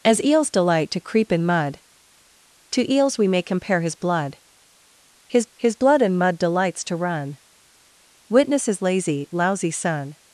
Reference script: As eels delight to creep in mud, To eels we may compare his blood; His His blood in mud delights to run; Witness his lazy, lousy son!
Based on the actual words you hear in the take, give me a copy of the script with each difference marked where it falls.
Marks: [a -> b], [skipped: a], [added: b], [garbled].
As eels delight to creep in mud, To eels we may compare his blood; His His blood in mud delights to run; Witness his lazy, lousy son!